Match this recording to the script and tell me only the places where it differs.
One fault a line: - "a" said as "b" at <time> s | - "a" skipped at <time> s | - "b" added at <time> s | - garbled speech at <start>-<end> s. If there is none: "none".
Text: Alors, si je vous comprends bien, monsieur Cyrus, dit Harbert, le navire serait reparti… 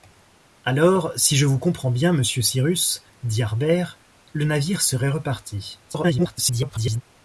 - garbled speech at 5.8-7.0 s